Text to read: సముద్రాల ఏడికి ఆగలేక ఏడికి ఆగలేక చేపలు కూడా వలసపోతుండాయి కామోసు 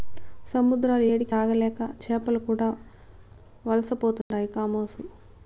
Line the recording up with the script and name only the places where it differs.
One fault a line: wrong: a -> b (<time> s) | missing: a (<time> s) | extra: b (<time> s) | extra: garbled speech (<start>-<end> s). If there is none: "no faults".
missing: ఏడికి ఆగలేక (1.8 s)